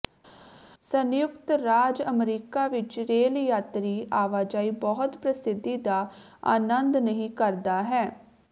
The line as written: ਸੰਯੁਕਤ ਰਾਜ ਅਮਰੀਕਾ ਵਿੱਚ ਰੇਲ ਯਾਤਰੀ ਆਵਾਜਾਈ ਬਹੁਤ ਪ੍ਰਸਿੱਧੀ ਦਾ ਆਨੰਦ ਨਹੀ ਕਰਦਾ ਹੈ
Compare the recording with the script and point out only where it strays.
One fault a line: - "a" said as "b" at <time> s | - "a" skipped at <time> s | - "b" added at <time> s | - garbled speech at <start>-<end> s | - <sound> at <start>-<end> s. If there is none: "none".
none